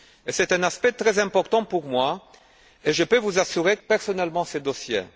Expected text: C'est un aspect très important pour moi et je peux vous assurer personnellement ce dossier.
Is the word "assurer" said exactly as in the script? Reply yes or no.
yes